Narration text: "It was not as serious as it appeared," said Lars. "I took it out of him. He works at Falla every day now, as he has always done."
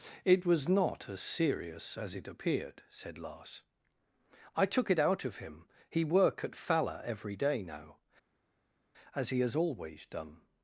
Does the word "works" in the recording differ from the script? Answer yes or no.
yes